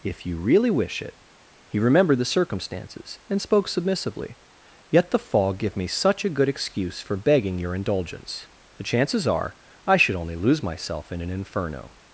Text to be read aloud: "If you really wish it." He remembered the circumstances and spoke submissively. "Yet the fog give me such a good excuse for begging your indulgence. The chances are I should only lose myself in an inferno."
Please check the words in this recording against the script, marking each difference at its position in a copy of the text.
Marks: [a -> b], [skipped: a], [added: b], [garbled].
"If you really wish it." He remembered the circumstances and spoke submissively. "Yet the fog give me such a good excuse for begging your indulgence. The chances are I should only lose myself in an inferno."